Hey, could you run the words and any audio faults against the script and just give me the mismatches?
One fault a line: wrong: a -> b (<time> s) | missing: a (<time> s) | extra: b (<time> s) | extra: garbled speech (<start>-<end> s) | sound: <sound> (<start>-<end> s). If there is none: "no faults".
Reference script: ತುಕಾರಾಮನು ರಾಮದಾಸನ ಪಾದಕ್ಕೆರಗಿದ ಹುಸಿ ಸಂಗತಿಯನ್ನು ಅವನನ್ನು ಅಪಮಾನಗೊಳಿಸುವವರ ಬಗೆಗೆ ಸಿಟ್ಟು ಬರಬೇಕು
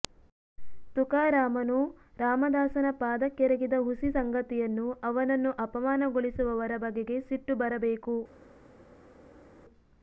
no faults